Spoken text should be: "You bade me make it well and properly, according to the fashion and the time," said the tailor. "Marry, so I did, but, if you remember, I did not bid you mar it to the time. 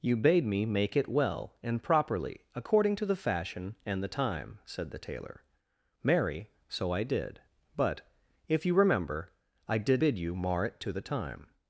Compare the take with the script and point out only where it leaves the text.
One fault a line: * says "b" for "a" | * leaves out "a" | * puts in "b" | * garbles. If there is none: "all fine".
* leaves out "not"